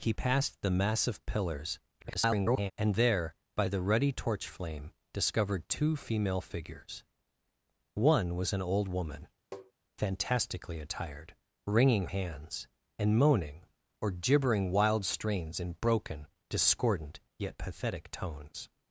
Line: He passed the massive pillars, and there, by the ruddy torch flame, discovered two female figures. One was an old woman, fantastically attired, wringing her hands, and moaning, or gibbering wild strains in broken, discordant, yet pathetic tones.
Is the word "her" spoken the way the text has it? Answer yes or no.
no